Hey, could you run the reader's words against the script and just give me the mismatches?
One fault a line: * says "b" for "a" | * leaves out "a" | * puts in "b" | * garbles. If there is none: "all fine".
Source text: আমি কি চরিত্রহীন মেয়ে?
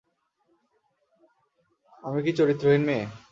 all fine